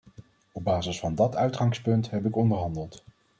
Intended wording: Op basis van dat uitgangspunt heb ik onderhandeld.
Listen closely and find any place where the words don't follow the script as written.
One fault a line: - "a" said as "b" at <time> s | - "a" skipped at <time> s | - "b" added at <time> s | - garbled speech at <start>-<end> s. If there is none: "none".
none